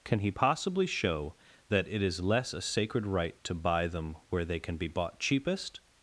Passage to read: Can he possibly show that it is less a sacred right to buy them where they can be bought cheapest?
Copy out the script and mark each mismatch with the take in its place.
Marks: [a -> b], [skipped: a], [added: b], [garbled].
Can he possibly show that it is less a sacred right to buy them where they can be bought cheapest?